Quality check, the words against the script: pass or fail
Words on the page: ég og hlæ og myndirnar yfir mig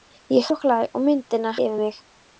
pass